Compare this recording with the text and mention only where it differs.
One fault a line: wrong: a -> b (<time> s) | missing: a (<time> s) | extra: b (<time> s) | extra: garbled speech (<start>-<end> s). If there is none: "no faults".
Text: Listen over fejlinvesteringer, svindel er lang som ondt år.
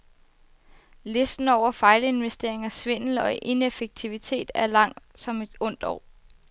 extra: og ineffektivitet (3.1 s)
extra: et (5.4 s)